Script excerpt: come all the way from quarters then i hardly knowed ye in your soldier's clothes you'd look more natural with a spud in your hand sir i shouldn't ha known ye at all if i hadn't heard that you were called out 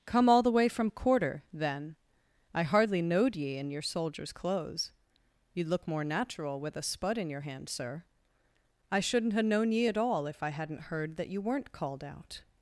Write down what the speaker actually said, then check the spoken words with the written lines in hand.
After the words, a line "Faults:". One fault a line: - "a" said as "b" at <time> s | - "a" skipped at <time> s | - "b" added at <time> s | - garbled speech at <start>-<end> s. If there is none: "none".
come all the way from quarter then i hardly knowed ye in your soldier's clothes you'd look more natural with a spud in your hand sir i shouldn't ha known ye at all if i hadn't heard that you weren't called out
Faults:
- "quarters" said as "quarter" at 0.9 s
- "were" said as "weren't" at 11.4 s